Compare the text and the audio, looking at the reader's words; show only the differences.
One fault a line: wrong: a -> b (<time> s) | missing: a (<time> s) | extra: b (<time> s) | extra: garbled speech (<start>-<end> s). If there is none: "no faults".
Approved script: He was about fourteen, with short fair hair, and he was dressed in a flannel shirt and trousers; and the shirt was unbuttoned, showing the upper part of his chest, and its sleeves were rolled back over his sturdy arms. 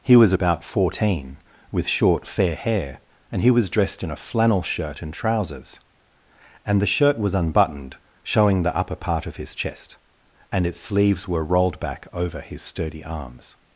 no faults